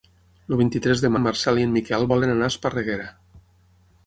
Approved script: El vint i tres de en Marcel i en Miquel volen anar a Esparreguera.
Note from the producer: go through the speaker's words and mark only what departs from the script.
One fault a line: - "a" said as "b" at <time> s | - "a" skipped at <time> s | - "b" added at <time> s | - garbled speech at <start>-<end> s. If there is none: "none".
none